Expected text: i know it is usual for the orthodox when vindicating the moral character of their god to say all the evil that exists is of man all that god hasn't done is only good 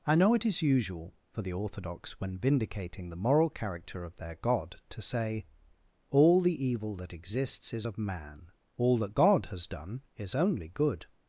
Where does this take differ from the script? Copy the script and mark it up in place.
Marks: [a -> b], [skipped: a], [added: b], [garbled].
i know it is usual for the orthodox when vindicating the moral character of their god to say all the evil that exists is of man all that god [hasn't -> has] done is only good